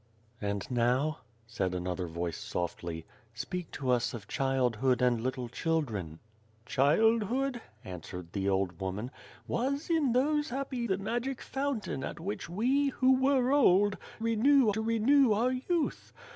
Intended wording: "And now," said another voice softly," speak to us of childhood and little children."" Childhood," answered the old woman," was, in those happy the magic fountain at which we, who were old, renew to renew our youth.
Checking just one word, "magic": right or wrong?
right